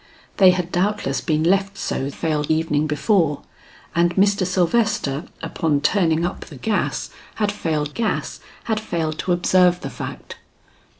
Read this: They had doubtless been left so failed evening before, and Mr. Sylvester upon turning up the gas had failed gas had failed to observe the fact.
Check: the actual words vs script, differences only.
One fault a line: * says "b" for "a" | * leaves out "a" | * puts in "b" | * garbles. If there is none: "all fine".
all fine